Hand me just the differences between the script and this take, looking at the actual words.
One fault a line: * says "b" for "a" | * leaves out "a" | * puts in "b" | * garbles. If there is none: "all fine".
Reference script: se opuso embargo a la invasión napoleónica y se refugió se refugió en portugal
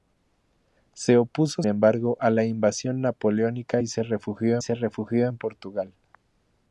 all fine